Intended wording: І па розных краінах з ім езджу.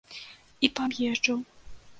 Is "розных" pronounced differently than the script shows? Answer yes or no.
yes